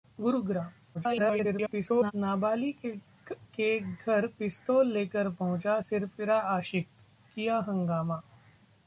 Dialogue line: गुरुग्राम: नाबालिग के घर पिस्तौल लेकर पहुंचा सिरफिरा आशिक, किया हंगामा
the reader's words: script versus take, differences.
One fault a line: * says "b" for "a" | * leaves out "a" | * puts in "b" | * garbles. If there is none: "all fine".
* garbles